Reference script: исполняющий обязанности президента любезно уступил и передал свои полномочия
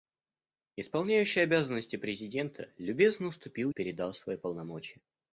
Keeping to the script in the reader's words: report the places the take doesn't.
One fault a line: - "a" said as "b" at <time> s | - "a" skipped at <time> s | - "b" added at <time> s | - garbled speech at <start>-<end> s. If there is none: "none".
none